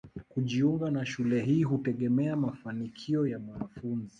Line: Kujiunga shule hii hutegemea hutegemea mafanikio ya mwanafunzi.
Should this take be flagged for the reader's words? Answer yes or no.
yes